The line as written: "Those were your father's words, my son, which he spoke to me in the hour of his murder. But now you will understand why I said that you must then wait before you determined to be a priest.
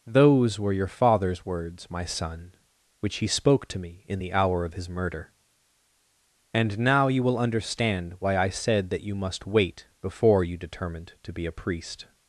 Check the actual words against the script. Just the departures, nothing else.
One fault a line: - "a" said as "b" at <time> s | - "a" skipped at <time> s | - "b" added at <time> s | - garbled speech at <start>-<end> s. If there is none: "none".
- "But" said as "And" at 6.5 s
- "then" skipped at 9.5 s